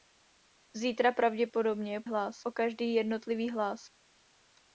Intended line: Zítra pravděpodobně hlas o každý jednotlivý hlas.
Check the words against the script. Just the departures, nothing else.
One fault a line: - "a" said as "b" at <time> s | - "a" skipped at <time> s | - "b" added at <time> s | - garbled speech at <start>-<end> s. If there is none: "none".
none